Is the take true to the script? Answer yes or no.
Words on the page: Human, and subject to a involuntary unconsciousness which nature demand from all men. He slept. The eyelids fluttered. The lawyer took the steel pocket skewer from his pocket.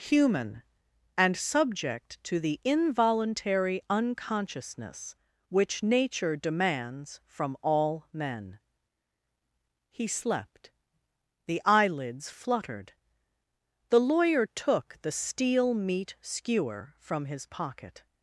no